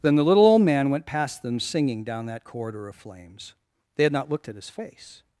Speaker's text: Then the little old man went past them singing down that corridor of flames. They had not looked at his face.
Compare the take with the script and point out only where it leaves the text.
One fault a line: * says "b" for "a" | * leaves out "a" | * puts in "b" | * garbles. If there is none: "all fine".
all fine